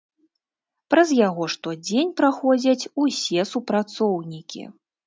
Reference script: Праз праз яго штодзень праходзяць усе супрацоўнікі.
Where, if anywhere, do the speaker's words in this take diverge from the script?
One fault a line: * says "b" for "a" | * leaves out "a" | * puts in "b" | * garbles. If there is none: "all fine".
* leaves out "праз"